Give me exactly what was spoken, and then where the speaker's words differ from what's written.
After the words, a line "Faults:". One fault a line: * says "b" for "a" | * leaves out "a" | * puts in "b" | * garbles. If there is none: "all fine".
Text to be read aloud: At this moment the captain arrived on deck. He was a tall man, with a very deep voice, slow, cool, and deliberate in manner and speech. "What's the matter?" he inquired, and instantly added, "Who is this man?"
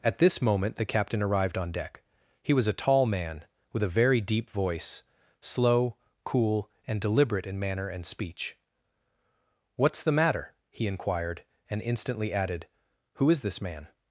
At this moment the captain arrived on deck. He was a tall man, with a very deep voice, slow, cool, and deliberate in manner and speech. "What's the matter?" he inquired, and instantly added, "Who is this man?"
Faults:
all fine